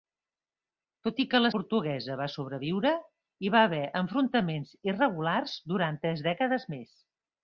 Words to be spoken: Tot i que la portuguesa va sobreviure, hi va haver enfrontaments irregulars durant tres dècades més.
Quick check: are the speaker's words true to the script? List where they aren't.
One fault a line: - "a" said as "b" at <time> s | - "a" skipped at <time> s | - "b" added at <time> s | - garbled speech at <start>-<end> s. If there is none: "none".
none